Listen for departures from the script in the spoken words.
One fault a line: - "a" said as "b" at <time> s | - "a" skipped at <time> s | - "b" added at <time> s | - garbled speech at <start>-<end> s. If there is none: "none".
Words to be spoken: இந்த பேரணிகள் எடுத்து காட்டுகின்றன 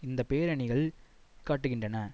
- "எடுத்து" skipped at 0.8 s